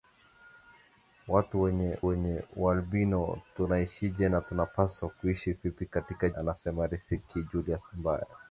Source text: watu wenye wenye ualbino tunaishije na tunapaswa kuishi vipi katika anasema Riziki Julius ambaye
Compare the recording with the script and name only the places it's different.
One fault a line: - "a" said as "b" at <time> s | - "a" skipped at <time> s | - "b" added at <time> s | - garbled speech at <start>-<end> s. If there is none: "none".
none